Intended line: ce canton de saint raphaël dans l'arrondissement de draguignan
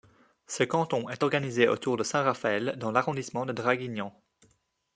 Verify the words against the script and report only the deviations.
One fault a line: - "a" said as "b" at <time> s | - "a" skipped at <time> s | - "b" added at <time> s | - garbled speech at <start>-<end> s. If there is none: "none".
- "est organisé autour" added at 1.1 s